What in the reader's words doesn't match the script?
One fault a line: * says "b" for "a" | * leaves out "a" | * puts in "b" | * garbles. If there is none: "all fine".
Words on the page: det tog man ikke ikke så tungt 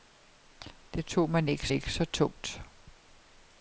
all fine